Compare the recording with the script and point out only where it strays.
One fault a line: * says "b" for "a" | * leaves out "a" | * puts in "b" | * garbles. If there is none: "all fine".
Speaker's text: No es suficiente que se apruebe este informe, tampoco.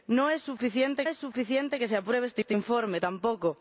* puts in "es suficiente"
* puts in "este"